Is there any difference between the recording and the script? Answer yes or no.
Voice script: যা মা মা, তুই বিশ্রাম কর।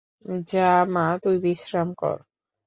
yes